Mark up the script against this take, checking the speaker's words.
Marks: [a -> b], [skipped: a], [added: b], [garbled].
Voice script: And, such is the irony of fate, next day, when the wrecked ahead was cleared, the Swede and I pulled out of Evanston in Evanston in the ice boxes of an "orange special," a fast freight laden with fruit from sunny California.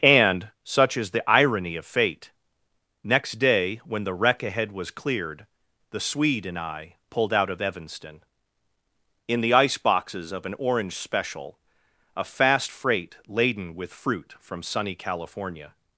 And, such is the irony of fate, next day, when the [wrecked -> wreck] ahead was cleared, the Swede and I pulled out of Evanston in [skipped: Evanston in] the ice boxes of an "orange special," a fast freight laden with fruit from sunny California.